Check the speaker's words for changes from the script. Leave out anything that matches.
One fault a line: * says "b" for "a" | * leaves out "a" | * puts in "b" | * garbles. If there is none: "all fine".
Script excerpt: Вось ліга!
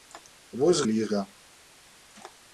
all fine